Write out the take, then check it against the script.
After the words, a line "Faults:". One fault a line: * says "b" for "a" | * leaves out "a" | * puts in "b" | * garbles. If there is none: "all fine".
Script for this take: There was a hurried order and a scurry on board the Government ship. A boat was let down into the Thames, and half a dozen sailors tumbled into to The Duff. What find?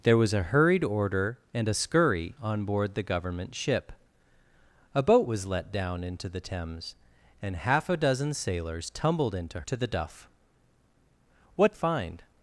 There was a hurried order and a scurry on board the Government ship. A boat was let down into the Thames, and half a dozen sailors tumbled into to The Duff. What find?
Faults:
all fine